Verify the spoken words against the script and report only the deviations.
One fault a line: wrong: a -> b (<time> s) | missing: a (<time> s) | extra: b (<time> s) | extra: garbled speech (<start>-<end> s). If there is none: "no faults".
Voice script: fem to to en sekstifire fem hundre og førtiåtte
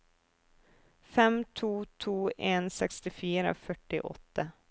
missing: fem hundre og (3.5 s)